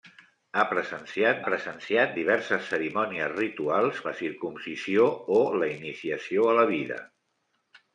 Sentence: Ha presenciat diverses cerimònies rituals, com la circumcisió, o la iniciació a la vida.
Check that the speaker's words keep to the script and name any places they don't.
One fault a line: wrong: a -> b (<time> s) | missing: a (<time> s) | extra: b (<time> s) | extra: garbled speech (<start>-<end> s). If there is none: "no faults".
extra: presenciat (1.4 s)
missing: com (4.0 s)